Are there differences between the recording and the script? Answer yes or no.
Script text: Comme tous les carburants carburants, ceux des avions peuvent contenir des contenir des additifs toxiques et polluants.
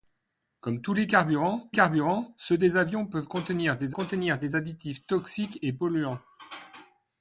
no